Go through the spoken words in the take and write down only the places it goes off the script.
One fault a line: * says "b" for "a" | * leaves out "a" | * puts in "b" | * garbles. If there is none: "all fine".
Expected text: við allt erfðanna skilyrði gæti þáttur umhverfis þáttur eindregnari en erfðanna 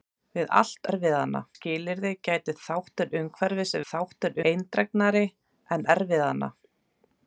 all fine